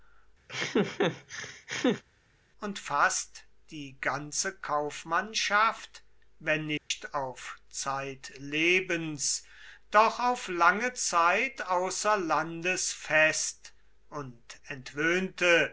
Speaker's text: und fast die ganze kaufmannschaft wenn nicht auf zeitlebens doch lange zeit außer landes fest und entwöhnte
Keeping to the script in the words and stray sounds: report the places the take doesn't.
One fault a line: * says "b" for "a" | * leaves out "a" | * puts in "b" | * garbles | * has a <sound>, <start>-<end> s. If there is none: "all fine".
* has a laugh, 0.5-2.0 s
* has a dropout, 6.8-6.9 s
* puts in "auf"